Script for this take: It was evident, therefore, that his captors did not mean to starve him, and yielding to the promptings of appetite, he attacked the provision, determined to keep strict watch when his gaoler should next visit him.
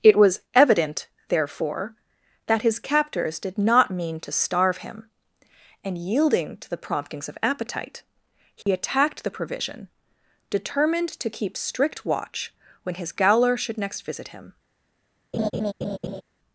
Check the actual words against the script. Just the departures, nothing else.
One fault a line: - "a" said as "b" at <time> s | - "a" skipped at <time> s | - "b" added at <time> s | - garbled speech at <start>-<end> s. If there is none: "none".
none